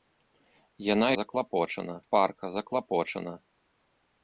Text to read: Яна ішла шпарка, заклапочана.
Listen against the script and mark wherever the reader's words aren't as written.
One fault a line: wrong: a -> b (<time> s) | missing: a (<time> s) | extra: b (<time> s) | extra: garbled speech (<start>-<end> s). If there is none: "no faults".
wrong: ішла -> заклапочана (1.2 s)